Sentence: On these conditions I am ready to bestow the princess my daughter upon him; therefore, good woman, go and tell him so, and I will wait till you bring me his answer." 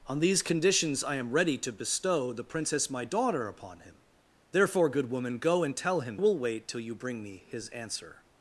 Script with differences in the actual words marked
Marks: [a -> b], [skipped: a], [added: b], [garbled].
On these conditions I am ready to bestow the princess my daughter upon him; therefore, good woman, go and tell him [skipped: so, and I] will wait till you bring me his answer."